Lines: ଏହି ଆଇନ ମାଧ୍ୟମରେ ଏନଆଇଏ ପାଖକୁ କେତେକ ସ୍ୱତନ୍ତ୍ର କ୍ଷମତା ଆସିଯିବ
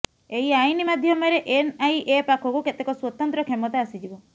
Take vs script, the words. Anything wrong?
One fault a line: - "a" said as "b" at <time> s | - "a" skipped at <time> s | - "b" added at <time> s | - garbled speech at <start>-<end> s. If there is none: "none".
none